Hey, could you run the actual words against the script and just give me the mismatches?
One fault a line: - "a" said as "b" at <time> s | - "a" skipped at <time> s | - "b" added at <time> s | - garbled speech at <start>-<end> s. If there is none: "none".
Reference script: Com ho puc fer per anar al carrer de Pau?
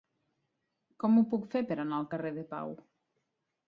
none